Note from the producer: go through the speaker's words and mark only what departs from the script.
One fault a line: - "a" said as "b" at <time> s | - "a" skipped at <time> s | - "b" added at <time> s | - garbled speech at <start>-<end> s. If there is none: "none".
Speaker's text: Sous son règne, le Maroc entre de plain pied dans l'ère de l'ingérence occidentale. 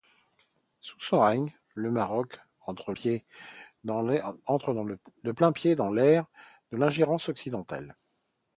- "de plain" skipped at 2.9 s